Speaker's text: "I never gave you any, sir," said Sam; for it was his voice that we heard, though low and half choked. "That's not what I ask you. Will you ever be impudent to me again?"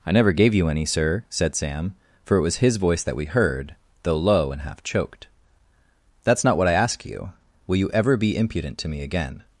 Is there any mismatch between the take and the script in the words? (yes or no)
no